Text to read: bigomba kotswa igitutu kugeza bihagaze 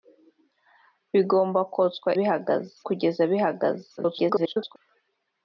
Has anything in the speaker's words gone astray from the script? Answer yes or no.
yes